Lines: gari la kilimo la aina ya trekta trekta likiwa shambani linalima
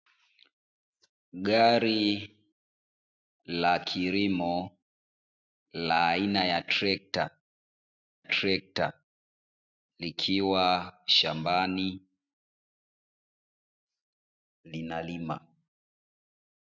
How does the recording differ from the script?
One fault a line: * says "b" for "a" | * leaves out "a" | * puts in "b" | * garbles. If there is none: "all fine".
all fine